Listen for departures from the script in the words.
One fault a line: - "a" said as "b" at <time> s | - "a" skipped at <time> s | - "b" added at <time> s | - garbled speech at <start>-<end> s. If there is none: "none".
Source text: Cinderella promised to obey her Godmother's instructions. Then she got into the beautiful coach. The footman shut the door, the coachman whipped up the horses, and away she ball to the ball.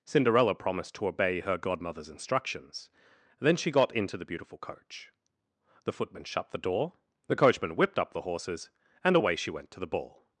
- "ball" said as "went" at 9.5 s